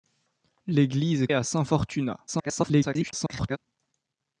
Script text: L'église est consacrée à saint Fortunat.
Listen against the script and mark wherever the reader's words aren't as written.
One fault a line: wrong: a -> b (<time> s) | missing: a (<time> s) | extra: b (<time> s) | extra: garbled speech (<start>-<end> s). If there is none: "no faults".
missing: consacrée (1.3 s)
extra: garbled speech (2.3-3.6 s)